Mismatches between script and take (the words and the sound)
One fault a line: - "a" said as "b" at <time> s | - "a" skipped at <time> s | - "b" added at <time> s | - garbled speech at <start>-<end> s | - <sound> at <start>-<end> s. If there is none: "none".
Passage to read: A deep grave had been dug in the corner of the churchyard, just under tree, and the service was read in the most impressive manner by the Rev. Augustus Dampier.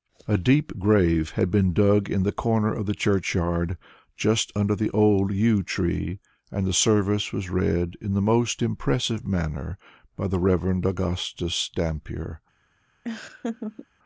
- "the old yew" added at 4.8 s
- laugh at 13.0-13.9 s